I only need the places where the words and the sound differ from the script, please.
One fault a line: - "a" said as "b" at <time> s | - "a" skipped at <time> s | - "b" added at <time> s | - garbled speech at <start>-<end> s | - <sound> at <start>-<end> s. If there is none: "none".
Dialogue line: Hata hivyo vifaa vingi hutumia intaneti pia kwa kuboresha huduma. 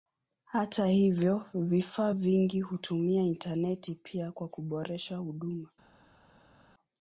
none